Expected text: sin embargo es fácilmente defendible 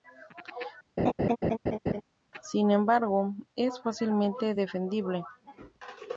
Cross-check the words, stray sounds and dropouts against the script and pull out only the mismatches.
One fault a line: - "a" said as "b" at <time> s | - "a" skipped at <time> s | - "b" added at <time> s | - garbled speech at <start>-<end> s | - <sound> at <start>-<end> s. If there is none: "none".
- laugh at 1.0-2.0 s